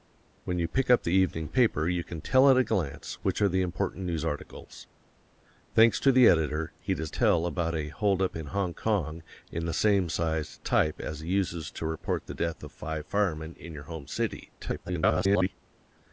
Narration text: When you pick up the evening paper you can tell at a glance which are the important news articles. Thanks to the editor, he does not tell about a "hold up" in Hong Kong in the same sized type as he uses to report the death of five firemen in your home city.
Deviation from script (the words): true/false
true